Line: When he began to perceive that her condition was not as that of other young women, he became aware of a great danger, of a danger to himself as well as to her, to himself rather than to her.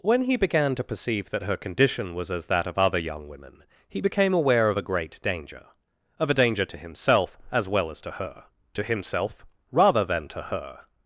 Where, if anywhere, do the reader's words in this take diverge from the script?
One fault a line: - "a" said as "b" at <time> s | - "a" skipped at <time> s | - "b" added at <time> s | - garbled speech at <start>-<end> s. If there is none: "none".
- "not" skipped at 2.3 s